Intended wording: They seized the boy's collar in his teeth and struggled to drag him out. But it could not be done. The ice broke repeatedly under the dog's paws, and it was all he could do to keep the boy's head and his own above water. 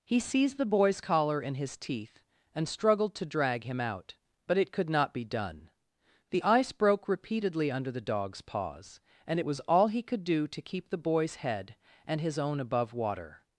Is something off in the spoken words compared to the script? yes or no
yes